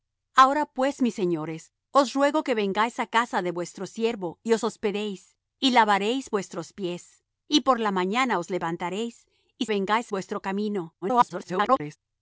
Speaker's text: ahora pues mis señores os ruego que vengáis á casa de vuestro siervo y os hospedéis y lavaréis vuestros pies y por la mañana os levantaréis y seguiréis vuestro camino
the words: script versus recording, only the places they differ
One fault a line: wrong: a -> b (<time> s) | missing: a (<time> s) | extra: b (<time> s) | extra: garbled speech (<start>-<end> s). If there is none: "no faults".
wrong: seguiréis -> vengáis (9.7 s)
extra: garbled speech (11.0-12.0 s)